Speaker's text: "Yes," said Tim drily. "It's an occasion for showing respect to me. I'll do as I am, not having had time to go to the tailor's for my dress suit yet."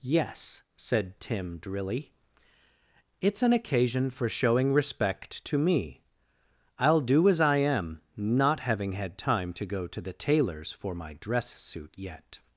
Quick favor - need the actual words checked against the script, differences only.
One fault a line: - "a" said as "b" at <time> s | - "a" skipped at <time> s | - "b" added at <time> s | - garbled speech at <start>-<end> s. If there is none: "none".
none